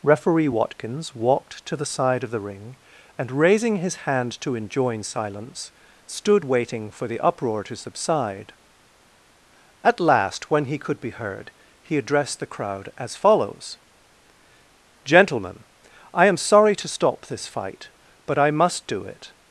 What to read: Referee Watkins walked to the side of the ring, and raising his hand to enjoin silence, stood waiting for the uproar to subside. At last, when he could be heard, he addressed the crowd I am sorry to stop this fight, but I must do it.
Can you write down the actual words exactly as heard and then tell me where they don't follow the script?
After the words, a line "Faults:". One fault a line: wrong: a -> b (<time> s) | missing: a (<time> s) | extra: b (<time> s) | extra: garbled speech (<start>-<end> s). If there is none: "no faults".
Referee Watkins walked to the side of the ring, and raising his hand to enjoin silence, stood waiting for the uproar to subside. At last, when he could be heard, he addressed the crowd as follows: "Gentlemen, I am sorry to stop this fight, but I must do it.
Faults:
extra: as follows Gentlemen (13.0 s)